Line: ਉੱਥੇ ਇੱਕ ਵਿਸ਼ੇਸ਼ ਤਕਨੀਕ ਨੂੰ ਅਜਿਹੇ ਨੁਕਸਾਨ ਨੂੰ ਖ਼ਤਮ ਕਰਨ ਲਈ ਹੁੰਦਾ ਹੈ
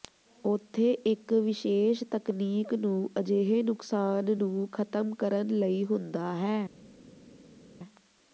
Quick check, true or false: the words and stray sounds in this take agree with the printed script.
true